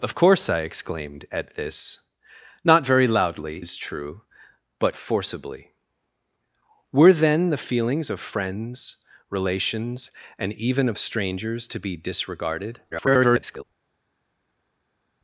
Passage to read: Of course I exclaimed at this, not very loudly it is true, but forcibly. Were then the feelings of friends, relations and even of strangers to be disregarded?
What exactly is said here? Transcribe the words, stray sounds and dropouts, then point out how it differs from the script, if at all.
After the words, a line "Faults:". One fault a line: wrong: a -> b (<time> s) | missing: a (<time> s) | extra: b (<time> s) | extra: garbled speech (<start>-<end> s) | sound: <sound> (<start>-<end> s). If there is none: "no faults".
Of course I exclaimed at this, not very loudly is true, but forcibly. Were then the feelings of friends, relations and even of strangers to be disregarded? [garbled]
Faults:
missing: it (3.6 s)
extra: garbled speech (12.9-13.6 s)